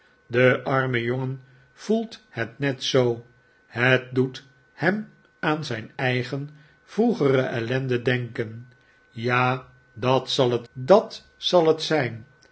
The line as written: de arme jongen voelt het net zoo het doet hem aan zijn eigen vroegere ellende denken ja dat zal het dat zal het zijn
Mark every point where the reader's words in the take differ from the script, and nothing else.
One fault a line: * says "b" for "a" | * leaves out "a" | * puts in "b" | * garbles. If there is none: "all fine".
all fine